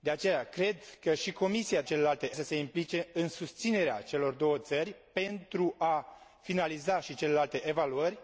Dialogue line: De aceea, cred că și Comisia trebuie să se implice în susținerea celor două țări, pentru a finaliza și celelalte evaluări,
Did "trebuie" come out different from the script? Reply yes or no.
yes